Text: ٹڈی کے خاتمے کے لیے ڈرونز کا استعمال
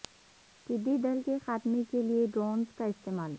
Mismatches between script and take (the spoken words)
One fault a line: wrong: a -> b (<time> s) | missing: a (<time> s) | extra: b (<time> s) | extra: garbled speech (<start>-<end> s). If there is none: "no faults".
extra: دل (1.0 s)